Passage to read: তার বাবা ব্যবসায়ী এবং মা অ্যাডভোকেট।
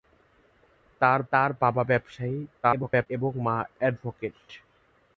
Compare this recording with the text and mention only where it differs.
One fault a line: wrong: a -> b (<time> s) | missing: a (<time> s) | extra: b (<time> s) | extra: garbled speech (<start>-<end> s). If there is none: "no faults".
extra: তার (1.3 s)
extra: garbled speech (2.6-3.1 s)